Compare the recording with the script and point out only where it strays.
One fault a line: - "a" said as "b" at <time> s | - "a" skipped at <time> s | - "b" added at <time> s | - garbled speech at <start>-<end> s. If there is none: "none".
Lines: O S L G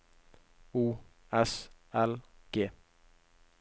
none